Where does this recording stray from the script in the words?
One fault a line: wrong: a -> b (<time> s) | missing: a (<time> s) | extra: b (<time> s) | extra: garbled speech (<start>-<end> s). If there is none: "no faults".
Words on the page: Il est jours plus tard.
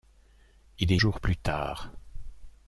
no faults